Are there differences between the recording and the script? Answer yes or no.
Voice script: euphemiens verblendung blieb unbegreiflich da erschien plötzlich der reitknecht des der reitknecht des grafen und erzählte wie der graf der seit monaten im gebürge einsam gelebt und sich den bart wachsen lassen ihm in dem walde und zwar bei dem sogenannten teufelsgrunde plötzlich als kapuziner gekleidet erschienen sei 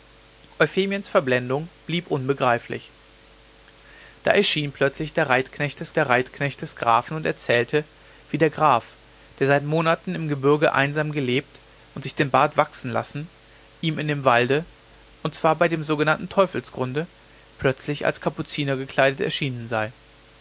no